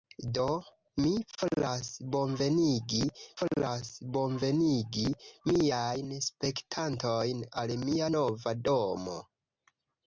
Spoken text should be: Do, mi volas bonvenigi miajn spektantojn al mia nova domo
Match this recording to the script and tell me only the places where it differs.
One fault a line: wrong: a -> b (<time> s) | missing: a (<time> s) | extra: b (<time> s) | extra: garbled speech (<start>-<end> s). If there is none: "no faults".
extra: volas bonvenigi (3.4 s)